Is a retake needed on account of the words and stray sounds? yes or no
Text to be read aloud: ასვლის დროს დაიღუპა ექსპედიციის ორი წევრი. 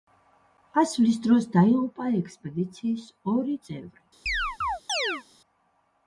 yes